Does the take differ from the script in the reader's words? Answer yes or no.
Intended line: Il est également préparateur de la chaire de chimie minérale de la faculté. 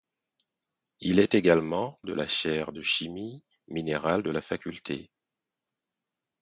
yes